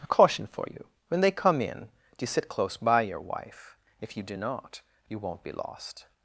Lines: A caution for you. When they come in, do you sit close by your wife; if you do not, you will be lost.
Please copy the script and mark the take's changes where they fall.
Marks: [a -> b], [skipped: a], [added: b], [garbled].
A caution for you. When they come in, do you sit close by your wife; if you do not, you [will -> won't] be lost.